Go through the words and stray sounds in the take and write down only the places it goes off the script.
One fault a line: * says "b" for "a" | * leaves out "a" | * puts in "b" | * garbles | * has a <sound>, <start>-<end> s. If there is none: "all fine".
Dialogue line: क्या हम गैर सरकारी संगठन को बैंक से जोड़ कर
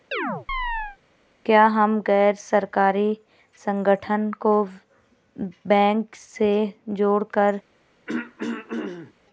* has a chirp, 0.1-1.0 s
* has a throat clearing, 8.1-9.1 s